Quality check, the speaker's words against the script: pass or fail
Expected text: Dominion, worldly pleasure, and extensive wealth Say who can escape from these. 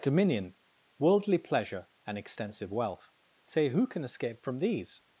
pass